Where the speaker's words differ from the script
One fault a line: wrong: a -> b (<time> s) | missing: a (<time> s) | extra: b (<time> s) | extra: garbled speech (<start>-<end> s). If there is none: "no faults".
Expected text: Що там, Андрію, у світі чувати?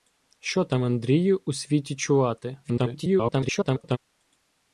extra: garbled speech (2.6-4.0 s)